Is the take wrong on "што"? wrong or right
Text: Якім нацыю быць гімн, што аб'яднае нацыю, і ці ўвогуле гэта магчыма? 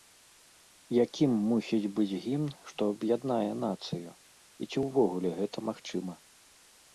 right